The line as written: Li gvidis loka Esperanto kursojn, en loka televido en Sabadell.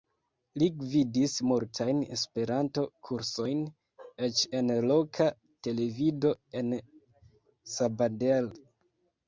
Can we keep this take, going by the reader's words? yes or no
no